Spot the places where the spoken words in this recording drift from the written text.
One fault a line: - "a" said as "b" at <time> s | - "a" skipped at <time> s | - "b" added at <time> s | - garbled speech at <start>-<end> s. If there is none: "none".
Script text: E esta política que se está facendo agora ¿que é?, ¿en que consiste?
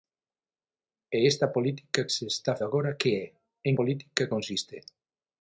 - "que" skipped at 2.0 s
- "facendo" skipped at 2.5 s
- "que" said as "política" at 3.8 s